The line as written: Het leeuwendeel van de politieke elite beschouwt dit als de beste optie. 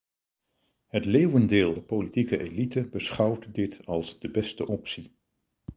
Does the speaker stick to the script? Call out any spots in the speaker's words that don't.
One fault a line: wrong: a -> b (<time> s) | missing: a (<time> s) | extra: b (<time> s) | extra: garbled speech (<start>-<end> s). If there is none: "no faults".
missing: van (1.8 s)